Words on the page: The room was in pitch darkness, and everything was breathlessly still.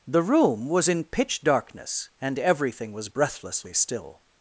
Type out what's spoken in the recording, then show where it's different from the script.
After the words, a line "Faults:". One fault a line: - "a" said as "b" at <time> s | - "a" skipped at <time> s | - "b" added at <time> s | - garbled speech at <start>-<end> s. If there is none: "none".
The room was in pitch darkness, and everything was breathlessly still.
Faults:
none